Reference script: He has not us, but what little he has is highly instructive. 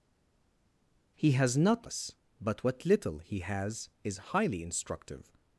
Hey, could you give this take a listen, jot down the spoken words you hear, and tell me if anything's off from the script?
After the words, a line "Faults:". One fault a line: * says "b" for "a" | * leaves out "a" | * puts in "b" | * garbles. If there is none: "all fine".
He has not us, but what little he has is highly instructive.
Faults:
all fine